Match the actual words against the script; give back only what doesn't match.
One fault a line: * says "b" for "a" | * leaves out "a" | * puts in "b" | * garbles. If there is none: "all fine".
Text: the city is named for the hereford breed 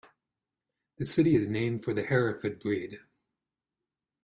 all fine